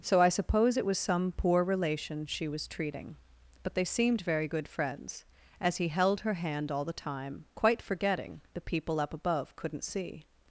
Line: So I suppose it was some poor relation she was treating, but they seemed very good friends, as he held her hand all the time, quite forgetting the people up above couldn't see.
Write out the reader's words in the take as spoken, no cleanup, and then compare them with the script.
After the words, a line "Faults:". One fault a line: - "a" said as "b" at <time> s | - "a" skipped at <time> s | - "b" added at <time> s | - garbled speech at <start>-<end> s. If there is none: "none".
So I suppose it was some poor relation she was treating, but they seemed very good friends, as he held her hand all the time, quite forgetting the people up above couldn't see.
Faults:
none